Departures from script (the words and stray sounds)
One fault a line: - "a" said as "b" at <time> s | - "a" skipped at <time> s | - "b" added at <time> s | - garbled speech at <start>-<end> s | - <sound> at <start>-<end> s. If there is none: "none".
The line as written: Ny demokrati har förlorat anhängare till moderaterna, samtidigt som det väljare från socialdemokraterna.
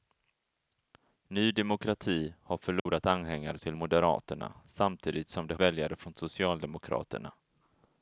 - dropout at 2.8-2.9 s